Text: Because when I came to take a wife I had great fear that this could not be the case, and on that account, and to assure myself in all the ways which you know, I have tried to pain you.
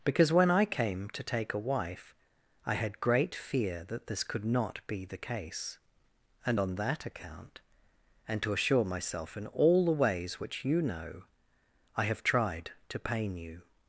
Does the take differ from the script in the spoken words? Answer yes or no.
no